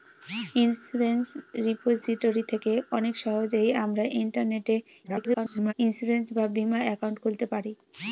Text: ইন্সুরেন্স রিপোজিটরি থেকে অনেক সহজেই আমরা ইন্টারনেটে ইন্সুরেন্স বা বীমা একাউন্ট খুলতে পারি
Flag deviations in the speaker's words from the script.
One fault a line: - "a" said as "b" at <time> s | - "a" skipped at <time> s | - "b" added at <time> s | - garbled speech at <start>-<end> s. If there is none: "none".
- garbled speech at 5.0-5.7 s